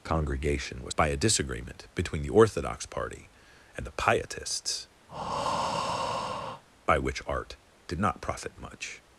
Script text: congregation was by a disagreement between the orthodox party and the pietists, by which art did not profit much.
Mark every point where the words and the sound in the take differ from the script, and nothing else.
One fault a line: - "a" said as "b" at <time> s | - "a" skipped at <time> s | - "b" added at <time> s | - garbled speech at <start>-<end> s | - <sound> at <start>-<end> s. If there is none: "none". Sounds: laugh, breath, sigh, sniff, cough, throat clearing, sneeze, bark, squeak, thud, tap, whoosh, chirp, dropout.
- breath at 5.1-6.6 s